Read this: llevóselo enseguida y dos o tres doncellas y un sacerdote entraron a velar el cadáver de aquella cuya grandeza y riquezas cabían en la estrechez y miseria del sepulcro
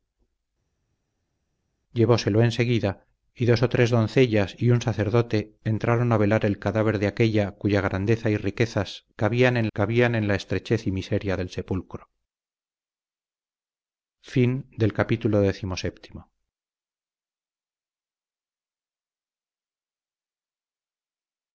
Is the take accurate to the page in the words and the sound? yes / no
no